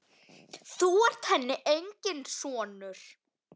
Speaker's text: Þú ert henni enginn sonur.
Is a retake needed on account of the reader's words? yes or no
no